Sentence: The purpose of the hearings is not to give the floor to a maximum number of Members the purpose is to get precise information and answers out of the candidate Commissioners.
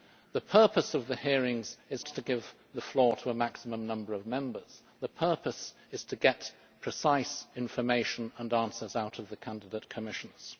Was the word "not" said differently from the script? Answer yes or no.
yes